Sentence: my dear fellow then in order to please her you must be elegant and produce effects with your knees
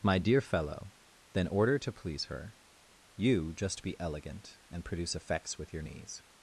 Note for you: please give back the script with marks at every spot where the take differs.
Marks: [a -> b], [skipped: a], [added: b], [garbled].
my dear fellow then [skipped: in] order to please her you [must -> just] be elegant and produce effects with your knees